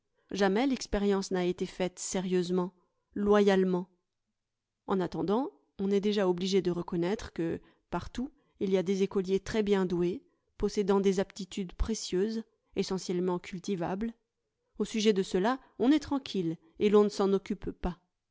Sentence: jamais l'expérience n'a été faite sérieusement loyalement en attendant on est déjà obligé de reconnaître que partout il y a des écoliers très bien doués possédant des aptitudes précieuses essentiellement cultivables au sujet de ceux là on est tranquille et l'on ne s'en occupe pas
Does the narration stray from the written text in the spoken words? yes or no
no